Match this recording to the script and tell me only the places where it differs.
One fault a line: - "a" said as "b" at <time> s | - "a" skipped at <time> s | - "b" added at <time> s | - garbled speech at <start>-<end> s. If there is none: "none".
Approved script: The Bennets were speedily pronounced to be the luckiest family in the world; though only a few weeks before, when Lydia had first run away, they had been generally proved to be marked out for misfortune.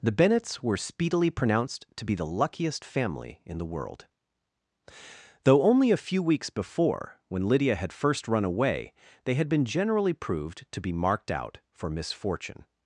none